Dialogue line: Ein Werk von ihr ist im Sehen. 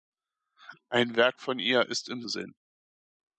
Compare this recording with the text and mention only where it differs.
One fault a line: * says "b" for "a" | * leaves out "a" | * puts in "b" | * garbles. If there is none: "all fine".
all fine